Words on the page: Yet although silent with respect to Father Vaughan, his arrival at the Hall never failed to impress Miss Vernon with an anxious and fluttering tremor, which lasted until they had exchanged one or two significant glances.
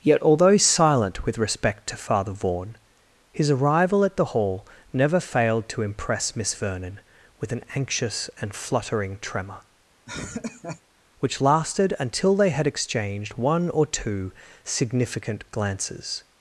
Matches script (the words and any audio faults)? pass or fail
fail